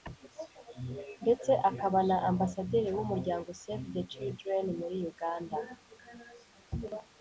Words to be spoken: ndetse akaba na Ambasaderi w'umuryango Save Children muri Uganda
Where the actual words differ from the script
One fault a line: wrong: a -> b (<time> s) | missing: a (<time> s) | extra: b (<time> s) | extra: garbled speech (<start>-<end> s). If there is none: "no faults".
extra: the (3.9 s)